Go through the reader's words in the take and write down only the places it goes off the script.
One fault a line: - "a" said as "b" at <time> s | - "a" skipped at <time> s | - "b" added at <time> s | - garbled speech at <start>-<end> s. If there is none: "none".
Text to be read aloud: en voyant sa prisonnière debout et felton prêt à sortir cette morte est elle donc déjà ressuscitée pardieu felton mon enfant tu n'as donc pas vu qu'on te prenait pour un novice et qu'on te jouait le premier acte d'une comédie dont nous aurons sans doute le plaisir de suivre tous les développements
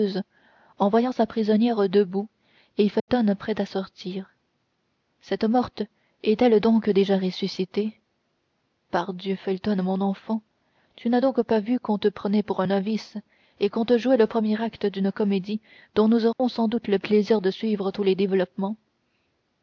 none